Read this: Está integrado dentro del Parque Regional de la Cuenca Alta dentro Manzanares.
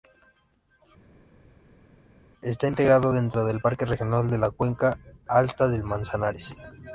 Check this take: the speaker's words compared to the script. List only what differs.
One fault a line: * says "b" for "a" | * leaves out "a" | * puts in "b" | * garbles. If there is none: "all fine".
* says "del" for "dentro"